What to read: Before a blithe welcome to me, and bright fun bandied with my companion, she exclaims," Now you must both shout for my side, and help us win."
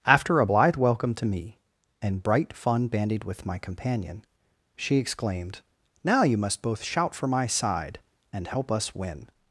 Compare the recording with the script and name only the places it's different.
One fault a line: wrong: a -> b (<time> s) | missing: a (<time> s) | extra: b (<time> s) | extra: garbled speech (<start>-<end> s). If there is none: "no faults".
wrong: Before -> After (0.1 s)
wrong: exclaims -> exclaimed (5.0 s)